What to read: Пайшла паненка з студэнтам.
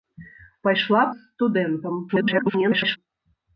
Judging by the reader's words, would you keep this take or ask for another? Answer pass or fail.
fail